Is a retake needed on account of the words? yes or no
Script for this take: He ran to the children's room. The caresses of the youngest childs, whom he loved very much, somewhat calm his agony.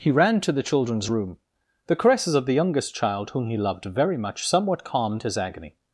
yes